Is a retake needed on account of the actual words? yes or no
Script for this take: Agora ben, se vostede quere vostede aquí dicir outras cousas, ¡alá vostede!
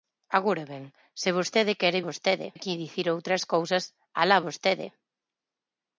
no